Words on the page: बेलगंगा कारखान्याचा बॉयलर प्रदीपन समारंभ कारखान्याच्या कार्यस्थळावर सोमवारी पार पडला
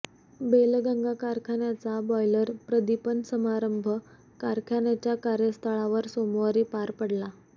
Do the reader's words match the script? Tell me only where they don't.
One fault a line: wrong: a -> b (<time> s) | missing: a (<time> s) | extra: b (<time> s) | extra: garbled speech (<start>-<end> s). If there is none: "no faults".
no faults